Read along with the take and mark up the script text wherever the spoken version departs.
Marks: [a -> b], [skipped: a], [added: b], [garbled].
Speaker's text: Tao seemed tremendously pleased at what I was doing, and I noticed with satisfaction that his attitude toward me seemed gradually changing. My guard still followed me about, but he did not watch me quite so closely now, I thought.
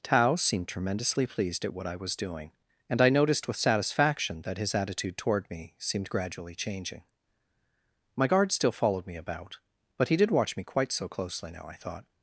Tao seemed tremendously pleased at what I was doing, and I noticed with satisfaction that his attitude toward me seemed gradually changing. My guard still followed me about, but he did [skipped: not] watch me quite so closely now, I thought.